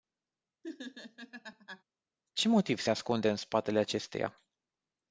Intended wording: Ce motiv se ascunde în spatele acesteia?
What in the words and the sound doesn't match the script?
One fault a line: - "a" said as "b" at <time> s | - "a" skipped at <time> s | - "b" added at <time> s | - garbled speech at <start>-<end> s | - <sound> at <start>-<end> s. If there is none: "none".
- laugh at 0.6-1.8 s